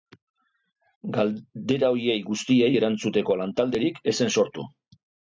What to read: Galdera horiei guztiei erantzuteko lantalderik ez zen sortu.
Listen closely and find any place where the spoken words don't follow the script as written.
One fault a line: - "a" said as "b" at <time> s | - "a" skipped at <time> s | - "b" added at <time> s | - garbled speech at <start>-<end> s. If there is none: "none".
none